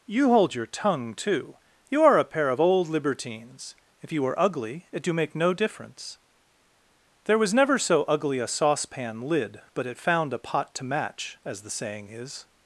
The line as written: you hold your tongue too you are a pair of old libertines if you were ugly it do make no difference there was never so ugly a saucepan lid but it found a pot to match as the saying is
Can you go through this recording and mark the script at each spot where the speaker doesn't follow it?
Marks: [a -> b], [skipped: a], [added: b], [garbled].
you hold your tongue too you are a pair of old libertines if you were ugly it do make no difference there was never so ugly a saucepan lid but it found a pot to match as the saying is